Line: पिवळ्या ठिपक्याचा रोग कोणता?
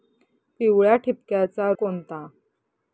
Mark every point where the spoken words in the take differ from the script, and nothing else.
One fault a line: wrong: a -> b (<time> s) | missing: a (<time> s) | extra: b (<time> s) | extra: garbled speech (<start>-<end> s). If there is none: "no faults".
missing: रोग (1.7 s)